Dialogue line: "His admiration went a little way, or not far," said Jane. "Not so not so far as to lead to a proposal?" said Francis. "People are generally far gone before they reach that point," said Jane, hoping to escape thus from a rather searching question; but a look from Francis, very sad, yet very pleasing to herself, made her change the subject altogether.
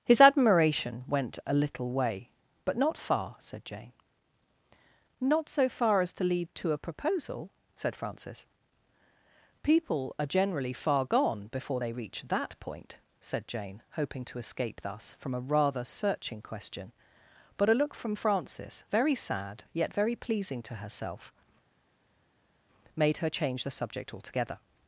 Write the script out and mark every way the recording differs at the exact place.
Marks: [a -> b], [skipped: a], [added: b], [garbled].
"His admiration went a little way, [or -> but] not far," said Jane. "Not so [skipped: not so] far as to lead to a proposal?" said Francis. "People are generally far gone before they reach that point," said Jane, hoping to escape thus from a rather searching question; but a look from Francis, very sad, yet very pleasing to herself, made her change the subject altogether.